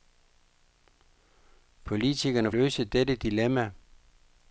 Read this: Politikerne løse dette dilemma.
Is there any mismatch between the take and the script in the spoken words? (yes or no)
no